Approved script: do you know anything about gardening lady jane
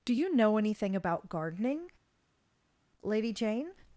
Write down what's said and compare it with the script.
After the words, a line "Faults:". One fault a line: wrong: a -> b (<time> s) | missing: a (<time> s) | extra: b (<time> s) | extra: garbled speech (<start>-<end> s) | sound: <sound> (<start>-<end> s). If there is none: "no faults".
do you know anything about gardening lady jane
Faults:
no faults